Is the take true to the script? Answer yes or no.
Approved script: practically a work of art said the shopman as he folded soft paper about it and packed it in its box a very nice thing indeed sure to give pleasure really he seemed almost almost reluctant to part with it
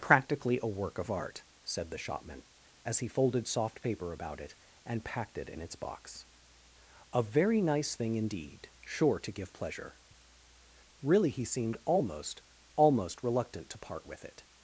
yes